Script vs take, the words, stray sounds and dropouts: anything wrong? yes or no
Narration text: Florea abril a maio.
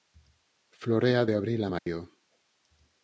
yes